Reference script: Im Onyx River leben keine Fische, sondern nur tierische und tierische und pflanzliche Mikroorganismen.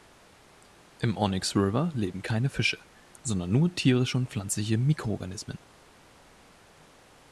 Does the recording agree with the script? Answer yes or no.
no